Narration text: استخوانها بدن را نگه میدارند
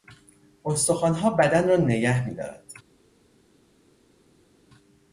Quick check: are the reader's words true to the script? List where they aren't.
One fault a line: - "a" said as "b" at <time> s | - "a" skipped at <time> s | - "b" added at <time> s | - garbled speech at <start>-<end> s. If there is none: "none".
none